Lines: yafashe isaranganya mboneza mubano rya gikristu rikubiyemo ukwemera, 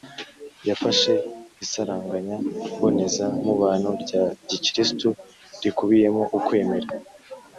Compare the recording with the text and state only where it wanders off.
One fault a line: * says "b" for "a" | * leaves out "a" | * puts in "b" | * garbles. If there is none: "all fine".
all fine